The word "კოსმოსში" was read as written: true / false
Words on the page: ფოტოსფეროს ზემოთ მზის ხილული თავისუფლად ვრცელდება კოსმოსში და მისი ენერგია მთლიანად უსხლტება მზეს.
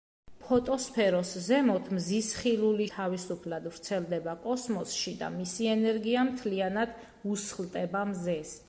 true